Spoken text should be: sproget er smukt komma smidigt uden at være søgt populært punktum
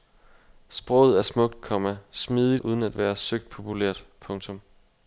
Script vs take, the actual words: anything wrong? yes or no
no